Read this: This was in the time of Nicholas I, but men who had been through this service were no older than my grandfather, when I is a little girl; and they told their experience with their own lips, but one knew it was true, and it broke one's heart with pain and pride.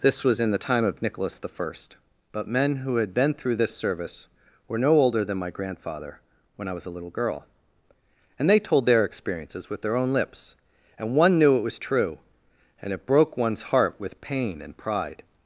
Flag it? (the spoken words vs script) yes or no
yes